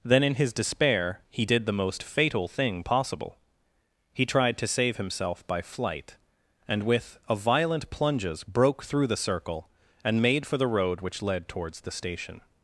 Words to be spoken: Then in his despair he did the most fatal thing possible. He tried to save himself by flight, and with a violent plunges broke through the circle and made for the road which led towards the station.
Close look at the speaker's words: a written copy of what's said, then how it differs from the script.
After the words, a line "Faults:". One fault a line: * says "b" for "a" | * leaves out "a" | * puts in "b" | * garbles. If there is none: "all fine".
Then in his despair he did the most fatal thing possible. He tried to save himself by flight, and with a violent plunges broke through the circle and made for the road which led towards the station.
Faults:
all fine